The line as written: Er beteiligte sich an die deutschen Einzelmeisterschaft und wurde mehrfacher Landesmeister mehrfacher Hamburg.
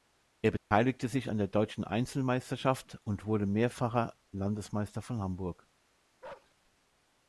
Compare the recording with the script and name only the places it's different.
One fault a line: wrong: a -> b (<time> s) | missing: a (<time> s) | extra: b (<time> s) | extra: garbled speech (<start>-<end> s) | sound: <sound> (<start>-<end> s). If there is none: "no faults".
sound: dropout (0.6-0.7 s)
wrong: die -> der (1.4 s)
wrong: mehrfacher -> von (5.0 s)
sound: bark (6.2-6.5 s)